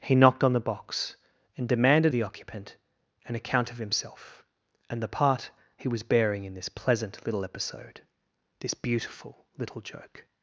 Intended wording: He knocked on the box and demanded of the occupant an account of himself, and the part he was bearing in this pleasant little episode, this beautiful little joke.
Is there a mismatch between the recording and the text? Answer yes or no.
yes